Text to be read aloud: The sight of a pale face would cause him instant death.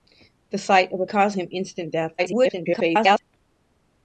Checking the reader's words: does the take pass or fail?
fail